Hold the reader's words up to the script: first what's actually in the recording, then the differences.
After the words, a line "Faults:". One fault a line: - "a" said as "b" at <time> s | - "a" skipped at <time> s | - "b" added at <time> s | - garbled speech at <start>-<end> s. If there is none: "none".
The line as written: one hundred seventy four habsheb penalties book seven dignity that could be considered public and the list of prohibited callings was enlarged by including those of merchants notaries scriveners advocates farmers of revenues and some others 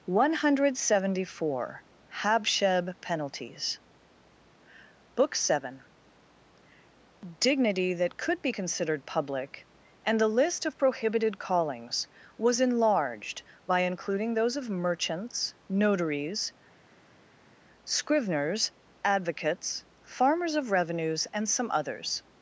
one hundred seventy four habsheb penalties book seven dignity that could be considered public and the list of prohibited callings was enlarged by including those of merchants notaries scriveners advocates farmers of revenues and some others
Faults:
none